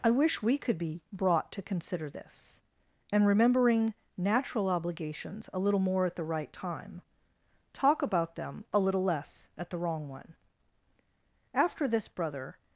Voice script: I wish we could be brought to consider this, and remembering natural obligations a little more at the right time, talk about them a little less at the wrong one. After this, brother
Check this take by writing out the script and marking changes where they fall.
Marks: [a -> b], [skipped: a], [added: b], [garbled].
I wish we could be brought to consider this, and remembering natural obligations a little more at the right time, talk about them a little less at the wrong one. After this, brother